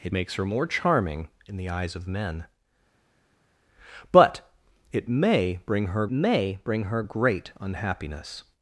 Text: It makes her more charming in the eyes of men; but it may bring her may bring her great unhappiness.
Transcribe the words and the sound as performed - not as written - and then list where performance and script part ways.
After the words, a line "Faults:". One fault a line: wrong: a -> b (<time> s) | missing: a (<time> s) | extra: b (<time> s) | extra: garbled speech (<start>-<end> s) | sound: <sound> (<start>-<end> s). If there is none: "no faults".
It makes her more charming in the eyes of men; but it may bring her may bring her great unhappiness.
Faults:
no faults